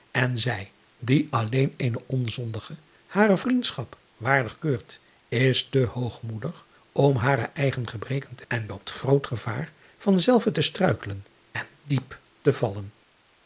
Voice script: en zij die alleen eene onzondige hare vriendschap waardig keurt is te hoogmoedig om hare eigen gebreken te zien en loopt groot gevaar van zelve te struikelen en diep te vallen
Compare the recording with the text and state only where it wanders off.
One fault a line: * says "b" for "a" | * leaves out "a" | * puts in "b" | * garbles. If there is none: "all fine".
* leaves out "zien"